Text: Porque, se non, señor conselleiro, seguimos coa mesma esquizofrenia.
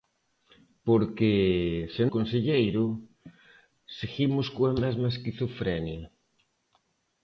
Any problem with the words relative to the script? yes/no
yes